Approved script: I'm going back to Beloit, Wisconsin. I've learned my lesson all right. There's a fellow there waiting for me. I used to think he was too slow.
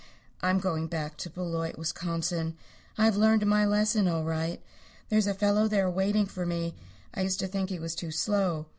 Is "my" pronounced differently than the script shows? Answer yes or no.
no